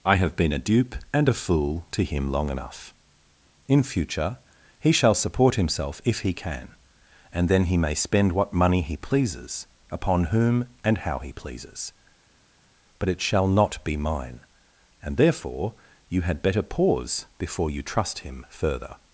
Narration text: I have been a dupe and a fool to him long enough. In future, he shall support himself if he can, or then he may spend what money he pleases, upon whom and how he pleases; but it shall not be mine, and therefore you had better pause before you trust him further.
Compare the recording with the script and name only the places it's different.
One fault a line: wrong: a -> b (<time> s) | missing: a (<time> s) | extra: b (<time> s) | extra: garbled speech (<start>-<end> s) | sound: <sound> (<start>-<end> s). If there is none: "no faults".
wrong: or -> and (7.3 s)